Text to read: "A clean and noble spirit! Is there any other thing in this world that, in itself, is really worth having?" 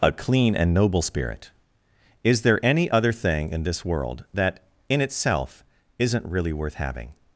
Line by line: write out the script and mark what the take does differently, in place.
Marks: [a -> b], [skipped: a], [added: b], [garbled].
"A clean and noble spirit! Is there any other thing in this world that, in itself, [is -> isn't] really worth having?"